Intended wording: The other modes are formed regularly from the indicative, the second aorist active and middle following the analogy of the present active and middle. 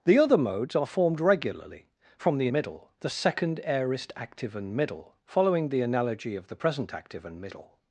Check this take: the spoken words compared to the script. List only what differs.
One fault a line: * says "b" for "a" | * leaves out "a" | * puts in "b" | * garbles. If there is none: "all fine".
* says "middle" for "indicative"